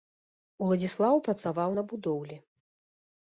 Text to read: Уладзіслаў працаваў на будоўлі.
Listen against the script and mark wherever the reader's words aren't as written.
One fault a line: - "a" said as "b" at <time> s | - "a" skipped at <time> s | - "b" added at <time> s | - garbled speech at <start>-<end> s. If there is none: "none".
none